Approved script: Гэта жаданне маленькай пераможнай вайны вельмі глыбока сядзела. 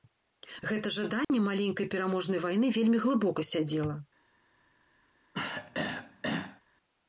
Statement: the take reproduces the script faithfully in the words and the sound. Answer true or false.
false